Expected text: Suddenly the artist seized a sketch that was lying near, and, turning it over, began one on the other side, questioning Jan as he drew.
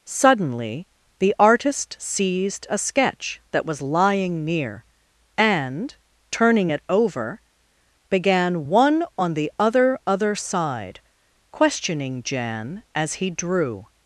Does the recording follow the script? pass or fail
fail